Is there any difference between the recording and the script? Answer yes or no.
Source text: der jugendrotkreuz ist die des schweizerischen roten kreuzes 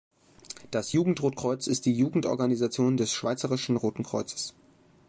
yes